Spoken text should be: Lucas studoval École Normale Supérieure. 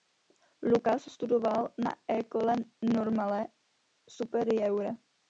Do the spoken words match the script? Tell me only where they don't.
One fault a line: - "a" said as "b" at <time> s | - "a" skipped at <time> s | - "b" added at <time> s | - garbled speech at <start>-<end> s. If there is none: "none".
- "na" added at 1.7 s